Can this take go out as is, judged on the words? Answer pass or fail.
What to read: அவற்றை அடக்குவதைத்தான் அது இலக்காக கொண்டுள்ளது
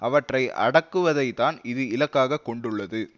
fail